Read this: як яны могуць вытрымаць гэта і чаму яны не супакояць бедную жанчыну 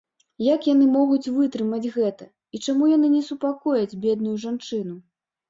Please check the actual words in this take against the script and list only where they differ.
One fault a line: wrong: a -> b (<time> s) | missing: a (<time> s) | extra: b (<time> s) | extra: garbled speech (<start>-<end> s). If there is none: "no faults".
no faults